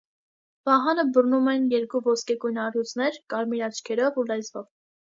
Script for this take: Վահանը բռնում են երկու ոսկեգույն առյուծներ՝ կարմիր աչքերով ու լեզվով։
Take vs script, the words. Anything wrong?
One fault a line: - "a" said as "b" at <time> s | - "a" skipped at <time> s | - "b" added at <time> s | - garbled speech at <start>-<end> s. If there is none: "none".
none